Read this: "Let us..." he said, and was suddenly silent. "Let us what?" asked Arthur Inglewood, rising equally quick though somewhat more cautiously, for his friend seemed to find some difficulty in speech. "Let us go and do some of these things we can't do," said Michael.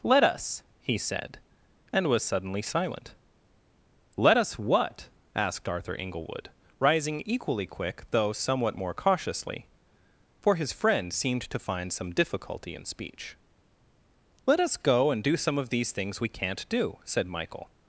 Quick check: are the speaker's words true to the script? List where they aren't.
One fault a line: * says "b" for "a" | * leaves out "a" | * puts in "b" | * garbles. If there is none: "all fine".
all fine